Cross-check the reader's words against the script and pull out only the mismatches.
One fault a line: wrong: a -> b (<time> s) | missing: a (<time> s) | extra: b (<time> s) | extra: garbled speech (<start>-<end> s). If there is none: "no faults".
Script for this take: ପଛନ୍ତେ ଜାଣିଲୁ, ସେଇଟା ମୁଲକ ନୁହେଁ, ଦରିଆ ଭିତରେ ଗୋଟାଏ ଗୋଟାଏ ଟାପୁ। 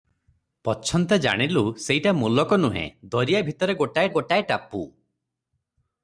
no faults